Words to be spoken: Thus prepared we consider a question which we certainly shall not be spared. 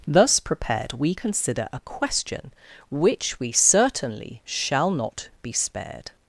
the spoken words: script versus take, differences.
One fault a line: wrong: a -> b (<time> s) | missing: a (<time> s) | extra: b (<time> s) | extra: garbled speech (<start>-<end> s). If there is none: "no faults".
no faults